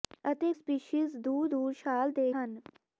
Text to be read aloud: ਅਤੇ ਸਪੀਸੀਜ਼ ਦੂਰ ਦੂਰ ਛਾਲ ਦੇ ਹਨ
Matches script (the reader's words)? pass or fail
pass